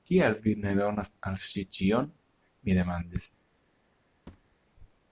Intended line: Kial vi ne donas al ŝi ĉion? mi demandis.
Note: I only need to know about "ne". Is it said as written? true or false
true